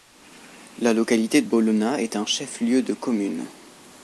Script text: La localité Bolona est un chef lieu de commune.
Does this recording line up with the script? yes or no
yes